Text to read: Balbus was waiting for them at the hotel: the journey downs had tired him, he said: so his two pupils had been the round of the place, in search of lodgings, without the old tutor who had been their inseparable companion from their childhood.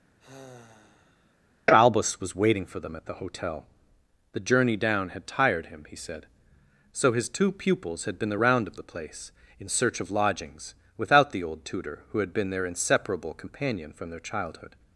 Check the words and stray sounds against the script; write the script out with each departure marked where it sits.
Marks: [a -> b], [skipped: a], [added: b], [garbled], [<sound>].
[sigh] Balbus was waiting for them at the hotel: the journey [downs -> down] had tired him, he said: so his two pupils had been the round of the place, in search of lodgings, without the old tutor who had been their inseparable companion from their childhood.